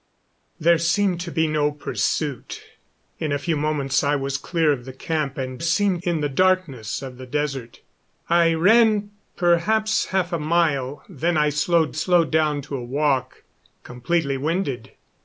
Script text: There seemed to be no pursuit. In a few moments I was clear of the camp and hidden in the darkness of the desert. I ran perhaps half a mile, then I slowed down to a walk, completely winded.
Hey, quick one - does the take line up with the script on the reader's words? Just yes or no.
no